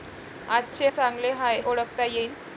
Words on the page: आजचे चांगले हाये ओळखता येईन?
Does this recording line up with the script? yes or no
yes